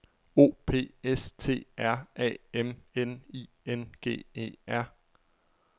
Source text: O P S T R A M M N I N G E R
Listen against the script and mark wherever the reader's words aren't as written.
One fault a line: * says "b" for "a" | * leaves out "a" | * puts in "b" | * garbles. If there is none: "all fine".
* leaves out "M"